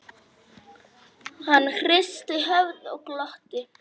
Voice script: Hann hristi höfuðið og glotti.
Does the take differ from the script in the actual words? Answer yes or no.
no